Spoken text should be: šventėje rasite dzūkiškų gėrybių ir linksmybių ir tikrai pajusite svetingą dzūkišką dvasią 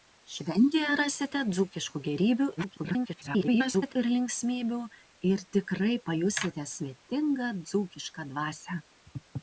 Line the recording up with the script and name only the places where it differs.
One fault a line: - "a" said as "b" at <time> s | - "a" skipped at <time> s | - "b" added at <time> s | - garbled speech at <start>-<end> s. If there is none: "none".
- garbled speech at 2.6-3.9 s